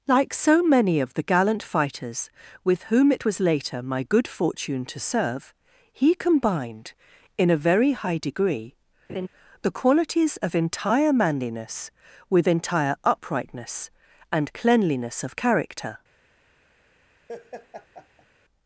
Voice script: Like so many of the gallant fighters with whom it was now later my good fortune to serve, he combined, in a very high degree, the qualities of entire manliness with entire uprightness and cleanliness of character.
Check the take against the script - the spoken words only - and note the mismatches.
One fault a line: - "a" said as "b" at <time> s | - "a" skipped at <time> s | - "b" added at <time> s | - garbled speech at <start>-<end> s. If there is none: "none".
- "now" skipped at 3.4 s